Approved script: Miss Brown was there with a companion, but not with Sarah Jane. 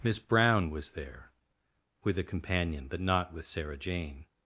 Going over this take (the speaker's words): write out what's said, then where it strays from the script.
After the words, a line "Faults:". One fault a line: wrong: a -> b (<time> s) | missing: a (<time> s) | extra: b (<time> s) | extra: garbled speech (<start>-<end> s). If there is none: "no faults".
Miss Brown was there with a companion, but not with Sarah Jane.
Faults:
no faults